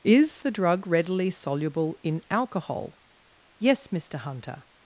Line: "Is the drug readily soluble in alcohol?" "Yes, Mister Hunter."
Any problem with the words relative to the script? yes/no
no